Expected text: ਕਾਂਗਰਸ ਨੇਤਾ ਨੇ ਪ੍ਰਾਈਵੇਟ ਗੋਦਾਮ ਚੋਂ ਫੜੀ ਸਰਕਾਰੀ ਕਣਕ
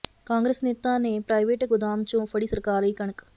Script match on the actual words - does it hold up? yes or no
yes